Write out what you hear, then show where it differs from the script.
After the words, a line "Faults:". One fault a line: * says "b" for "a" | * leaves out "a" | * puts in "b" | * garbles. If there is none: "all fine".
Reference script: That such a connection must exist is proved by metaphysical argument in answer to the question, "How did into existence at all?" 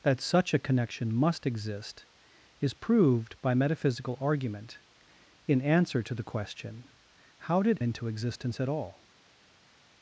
That such a connection must exist is proved by metaphysical argument in answer to the question, "How did into existence at all?"
Faults:
all fine